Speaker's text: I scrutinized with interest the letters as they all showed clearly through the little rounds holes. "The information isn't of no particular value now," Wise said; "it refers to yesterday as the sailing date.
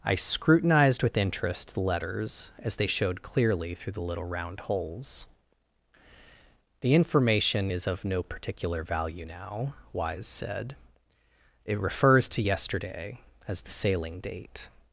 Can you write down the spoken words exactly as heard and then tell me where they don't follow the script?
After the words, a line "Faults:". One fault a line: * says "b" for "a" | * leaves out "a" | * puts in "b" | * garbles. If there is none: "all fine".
I scrutinized with interest the letters as they showed clearly through the little round holes. "The information is of no particular value now," Wise said; "it refers to yesterday as the sailing date.
Faults:
* leaves out "all"
* says "round" for "rounds"
* says "is" for "isn't"